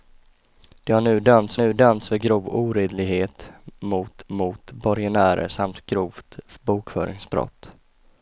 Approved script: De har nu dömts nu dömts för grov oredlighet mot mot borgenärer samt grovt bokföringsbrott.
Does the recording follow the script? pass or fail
pass